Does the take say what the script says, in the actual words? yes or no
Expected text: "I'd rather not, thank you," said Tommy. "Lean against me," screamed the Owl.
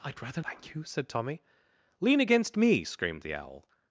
no